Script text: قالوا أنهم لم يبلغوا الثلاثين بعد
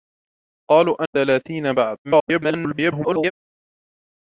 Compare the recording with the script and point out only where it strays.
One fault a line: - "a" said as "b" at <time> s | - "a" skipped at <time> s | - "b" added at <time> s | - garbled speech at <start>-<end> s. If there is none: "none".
- "أنهم لم يبلغوا" skipped at 1.0 s
- garbled speech at 2.0-3.3 s